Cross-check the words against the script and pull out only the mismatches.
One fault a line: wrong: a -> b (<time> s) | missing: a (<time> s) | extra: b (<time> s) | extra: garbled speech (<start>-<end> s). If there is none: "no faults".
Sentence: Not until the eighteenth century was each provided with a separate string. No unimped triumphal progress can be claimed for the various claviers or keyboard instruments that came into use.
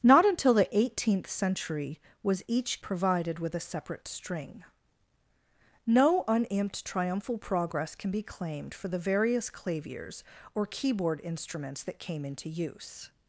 no faults